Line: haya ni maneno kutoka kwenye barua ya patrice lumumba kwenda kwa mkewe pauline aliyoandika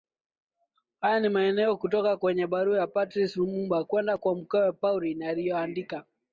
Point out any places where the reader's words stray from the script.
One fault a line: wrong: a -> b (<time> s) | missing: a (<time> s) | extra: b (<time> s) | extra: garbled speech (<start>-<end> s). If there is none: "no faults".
no faults